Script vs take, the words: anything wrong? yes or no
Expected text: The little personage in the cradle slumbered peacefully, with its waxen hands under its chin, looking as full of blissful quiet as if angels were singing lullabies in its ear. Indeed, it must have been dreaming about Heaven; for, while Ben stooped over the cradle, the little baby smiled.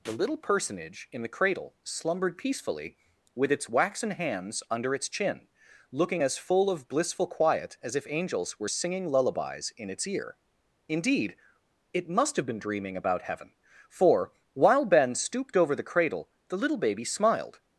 no